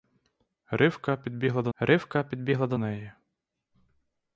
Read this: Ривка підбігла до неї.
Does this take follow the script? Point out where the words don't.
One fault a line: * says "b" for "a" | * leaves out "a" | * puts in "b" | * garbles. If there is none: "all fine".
* puts in "ривка підбігла до"